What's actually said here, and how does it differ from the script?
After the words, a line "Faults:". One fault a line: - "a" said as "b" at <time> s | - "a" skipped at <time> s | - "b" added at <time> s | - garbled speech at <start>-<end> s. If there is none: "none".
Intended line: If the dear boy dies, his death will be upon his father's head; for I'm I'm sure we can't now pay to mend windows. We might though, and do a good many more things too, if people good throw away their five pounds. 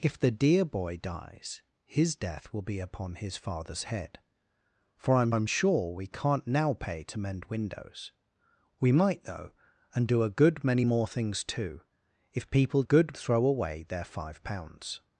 If the dear boy dies, his death will be upon his father's head; for I'm I'm sure we can't now pay to mend windows. We might though, and do a good many more things too, if people good throw away their five pounds.
Faults:
none